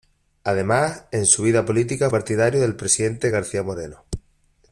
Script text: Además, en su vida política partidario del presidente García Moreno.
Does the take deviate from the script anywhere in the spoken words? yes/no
no